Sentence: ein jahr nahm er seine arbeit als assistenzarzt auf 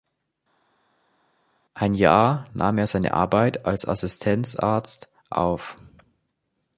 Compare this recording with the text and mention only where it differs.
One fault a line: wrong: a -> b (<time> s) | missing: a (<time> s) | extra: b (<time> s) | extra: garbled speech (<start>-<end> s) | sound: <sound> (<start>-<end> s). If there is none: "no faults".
no faults